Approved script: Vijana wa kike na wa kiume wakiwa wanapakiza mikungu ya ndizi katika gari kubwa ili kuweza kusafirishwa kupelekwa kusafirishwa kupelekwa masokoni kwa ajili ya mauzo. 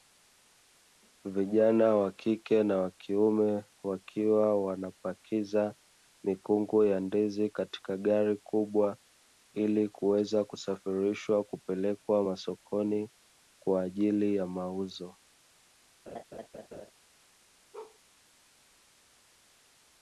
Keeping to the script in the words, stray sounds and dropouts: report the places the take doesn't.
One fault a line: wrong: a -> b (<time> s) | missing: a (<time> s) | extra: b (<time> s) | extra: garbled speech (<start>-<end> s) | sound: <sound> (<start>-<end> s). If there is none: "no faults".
missing: kusafirishwa kupelekwa (12.2 s)
sound: laugh (16.1-16.9 s)
sound: bark (17.7-18.0 s)